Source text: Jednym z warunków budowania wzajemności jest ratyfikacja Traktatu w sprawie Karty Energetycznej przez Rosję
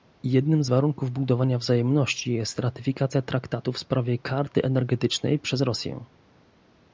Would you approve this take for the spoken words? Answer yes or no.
yes